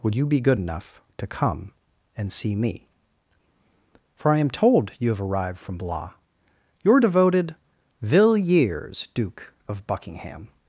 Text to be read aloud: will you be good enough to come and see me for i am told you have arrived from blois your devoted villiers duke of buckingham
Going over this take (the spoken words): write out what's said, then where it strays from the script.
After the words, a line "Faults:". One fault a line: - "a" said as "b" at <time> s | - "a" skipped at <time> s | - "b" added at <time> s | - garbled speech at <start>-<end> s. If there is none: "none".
would you be good enough to come and see me for i am told you have arrived from blois your devoted villiers duke of buckingham
Faults:
- "will" said as "would" at 0.0 s